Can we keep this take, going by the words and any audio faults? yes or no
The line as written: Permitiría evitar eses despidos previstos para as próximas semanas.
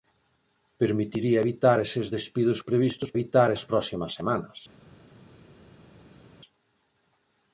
no